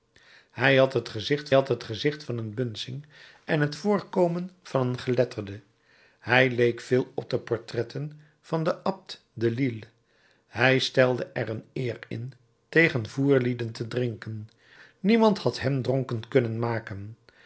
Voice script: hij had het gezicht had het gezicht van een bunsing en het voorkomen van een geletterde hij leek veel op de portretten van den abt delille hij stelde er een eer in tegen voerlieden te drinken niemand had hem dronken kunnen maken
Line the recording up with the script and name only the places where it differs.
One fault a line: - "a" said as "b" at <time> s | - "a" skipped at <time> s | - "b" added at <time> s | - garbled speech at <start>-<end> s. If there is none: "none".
none